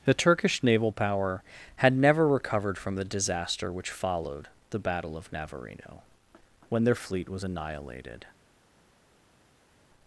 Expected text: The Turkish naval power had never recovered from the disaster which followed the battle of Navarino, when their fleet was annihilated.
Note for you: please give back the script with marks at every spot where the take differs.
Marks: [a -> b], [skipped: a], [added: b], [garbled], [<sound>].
The Turkish naval power had never recovered from the disaster which followed the battle of Navarino, when their fleet was annihilated.